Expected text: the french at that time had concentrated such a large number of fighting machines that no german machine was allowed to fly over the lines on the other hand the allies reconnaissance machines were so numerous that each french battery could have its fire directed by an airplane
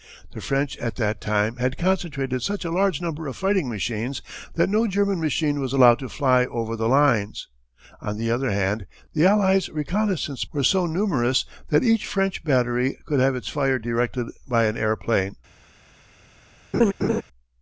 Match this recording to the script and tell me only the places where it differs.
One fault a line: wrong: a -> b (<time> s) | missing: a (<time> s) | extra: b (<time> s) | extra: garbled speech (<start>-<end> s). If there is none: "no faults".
missing: machines (10.5 s)